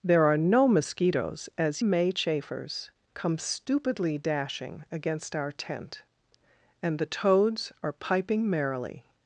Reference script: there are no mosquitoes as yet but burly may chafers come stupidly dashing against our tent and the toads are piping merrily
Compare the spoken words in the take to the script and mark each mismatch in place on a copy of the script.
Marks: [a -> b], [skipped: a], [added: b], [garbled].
there are no mosquitoes as [skipped: yet but burly] may chafers come stupidly dashing against our tent and the toads are piping merrily